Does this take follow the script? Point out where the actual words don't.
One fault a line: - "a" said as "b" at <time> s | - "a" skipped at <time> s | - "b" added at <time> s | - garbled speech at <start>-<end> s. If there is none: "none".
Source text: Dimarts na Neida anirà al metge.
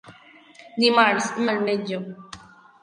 - "na Neida anirà" skipped at 1.3 s